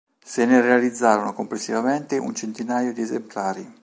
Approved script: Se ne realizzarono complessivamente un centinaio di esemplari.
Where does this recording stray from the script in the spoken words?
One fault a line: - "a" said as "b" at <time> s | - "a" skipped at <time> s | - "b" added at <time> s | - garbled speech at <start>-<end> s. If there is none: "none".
none